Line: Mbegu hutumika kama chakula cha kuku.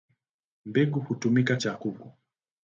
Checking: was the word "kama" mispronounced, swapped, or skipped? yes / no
yes